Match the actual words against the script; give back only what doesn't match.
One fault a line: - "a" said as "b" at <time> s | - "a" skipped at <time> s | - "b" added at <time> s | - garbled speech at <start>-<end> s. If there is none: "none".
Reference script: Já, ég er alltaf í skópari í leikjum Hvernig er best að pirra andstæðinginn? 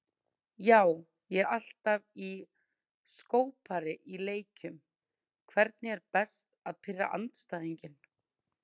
none